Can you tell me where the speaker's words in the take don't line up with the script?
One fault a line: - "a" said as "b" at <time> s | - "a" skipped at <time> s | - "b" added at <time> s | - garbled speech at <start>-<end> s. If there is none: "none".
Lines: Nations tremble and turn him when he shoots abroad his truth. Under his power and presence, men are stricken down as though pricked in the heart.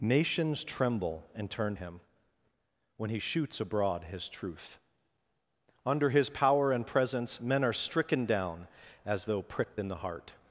none